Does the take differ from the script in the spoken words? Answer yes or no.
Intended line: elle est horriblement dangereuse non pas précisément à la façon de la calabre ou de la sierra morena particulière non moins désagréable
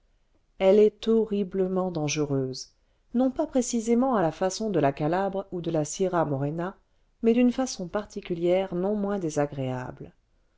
yes